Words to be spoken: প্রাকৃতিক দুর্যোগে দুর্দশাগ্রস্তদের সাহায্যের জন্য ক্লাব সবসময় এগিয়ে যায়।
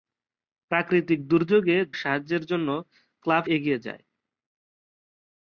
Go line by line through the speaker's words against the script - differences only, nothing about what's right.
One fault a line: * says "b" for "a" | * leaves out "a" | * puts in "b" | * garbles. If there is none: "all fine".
* leaves out "দুর্দশাগ্রস্তদের"
* leaves out "সবসময়"